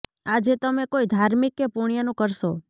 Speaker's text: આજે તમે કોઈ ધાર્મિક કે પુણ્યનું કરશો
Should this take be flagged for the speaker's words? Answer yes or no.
no